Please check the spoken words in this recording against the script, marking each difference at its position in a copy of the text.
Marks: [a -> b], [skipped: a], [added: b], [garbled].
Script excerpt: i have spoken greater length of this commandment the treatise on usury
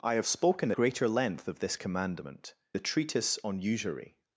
i have spoken greater length of this commandment the treatise on usury